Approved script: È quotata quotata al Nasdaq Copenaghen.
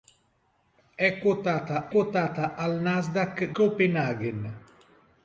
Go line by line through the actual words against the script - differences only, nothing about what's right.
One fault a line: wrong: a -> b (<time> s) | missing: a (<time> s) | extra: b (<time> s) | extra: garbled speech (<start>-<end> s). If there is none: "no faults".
no faults